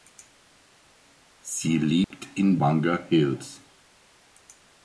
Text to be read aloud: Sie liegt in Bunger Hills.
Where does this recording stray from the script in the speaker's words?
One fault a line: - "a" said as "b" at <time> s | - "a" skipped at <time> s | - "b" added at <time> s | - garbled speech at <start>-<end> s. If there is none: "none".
none